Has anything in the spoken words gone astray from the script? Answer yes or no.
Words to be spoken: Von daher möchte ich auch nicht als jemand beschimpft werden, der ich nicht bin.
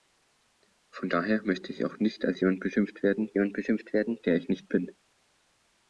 yes